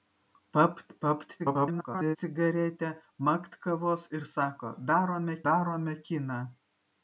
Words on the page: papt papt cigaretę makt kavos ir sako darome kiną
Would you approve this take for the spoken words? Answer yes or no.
no